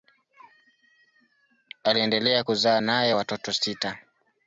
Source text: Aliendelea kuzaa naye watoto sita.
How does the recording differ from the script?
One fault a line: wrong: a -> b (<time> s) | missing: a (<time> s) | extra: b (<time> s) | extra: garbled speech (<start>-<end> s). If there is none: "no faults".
no faults